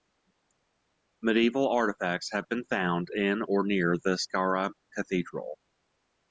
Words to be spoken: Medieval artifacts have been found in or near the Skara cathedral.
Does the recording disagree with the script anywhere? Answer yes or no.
no